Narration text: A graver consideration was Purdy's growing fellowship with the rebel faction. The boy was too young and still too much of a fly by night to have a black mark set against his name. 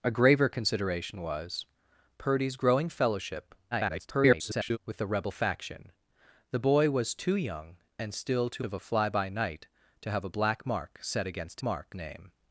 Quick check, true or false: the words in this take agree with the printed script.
false